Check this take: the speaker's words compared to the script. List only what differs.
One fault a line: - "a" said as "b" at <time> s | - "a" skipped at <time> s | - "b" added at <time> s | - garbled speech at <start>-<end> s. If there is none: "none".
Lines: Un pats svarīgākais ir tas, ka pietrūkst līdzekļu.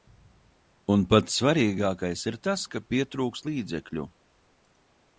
none